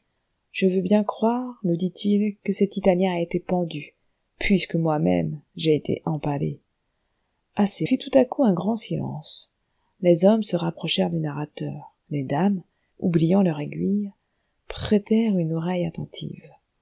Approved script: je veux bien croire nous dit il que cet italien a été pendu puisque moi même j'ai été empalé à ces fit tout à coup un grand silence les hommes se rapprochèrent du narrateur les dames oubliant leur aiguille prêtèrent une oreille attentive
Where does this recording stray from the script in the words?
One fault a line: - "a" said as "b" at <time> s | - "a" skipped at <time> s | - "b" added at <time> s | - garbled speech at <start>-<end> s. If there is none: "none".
none